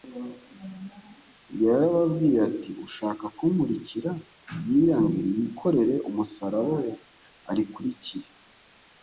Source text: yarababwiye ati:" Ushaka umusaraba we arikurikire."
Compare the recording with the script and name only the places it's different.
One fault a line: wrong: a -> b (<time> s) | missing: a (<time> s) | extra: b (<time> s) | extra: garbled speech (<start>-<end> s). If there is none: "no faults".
extra: kunkurikira yiyange yikorere (3.4 s)